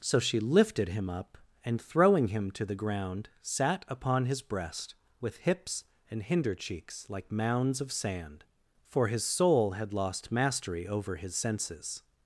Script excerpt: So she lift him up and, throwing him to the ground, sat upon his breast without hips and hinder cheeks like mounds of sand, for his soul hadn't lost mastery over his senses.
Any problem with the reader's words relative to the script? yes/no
yes